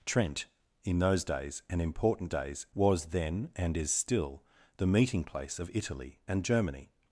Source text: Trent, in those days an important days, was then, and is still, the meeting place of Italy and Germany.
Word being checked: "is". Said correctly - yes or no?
yes